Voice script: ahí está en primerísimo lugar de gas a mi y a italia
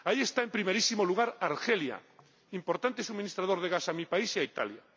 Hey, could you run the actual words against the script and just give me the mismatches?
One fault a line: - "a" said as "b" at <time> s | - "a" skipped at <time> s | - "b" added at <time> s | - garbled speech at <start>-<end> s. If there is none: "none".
- "argelia importante suministrador" added at 1.4 s
- "país" added at 4.0 s